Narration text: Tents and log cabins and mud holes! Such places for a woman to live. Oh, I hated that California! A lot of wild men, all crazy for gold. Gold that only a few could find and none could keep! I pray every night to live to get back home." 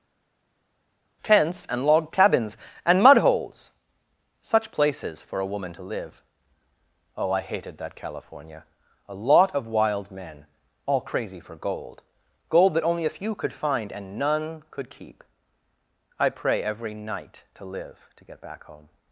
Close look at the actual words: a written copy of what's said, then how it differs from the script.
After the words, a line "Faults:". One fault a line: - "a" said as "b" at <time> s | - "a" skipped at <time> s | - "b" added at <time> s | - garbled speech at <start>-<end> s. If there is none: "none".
Tents and log cabins and mud holes! Such places for a woman to live. Oh, I hated that California! A lot of wild men, all crazy for gold. Gold that only a few could find and none could keep! I pray every night to live to get back home."
Faults:
none